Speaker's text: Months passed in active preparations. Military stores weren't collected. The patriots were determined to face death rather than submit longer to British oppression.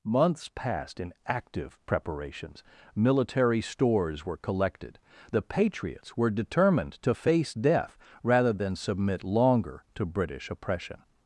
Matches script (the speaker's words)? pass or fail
fail